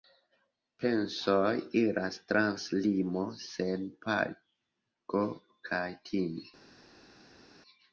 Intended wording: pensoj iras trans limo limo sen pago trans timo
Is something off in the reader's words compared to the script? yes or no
yes